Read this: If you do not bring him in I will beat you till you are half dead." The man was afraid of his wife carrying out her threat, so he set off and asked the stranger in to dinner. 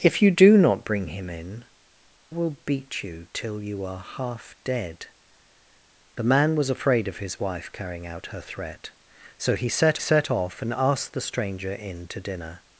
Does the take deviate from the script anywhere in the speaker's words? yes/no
yes